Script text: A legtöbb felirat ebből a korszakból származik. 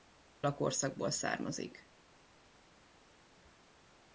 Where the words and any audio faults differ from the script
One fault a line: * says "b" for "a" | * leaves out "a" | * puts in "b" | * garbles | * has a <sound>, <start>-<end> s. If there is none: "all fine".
* leaves out "legtöbb felirat ebből"